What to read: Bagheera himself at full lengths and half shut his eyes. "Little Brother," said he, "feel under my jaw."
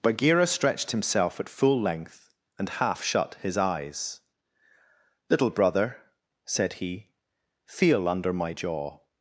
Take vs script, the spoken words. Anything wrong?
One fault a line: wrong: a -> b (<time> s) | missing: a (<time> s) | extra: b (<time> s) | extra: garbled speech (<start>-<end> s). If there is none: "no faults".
extra: stretched (0.5 s)
wrong: lengths -> length (1.8 s)